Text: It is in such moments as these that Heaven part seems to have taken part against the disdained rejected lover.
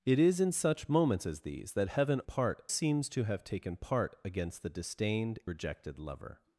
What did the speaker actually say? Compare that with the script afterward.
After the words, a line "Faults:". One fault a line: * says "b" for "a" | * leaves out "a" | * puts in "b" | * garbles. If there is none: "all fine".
It is in such moments as these that Heaven part seems to have taken part against the disdained rejected lover.
Faults:
all fine